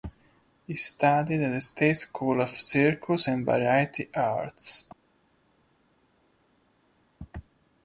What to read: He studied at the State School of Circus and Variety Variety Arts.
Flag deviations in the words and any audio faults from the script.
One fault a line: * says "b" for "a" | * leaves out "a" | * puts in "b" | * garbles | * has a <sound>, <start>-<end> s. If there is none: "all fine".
* leaves out "Variety"